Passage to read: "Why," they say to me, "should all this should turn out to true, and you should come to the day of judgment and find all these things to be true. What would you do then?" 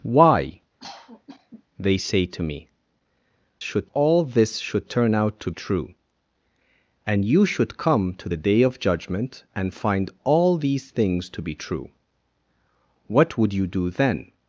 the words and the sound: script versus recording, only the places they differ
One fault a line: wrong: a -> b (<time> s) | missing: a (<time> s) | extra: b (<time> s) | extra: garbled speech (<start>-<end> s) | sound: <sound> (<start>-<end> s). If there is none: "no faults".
sound: cough (0.8-1.6 s)